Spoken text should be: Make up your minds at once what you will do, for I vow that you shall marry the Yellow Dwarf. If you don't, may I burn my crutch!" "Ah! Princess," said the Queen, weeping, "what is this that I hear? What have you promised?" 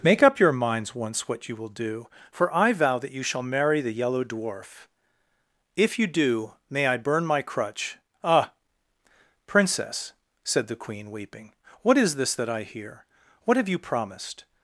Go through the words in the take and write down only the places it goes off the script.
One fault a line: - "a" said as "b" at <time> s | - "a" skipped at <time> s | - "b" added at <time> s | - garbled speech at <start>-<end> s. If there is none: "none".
- "at" skipped at 0.9 s
- "don't" said as "do" at 6.1 s